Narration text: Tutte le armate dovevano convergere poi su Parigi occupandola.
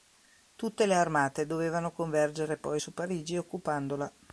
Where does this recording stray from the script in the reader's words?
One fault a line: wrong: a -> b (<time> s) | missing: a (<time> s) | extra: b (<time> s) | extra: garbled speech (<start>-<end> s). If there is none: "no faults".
no faults